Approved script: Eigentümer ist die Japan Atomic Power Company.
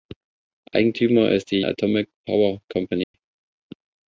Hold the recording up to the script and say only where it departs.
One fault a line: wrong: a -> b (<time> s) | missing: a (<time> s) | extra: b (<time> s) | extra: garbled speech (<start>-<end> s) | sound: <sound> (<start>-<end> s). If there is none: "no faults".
missing: Japan (1.6 s)
sound: dropout (3.0-3.1 s)